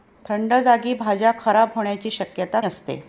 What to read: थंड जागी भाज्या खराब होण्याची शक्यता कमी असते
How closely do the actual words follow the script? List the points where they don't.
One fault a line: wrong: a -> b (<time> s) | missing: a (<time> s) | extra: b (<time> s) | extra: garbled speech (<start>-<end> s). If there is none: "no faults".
missing: कमी (2.6 s)